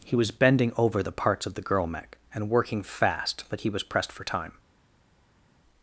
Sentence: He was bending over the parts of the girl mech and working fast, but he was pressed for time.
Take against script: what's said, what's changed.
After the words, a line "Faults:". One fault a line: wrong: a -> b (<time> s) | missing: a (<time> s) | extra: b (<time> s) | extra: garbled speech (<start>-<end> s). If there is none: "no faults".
He was bending over the parts of the girl mech and working fast, but he was pressed for time.
Faults:
no faults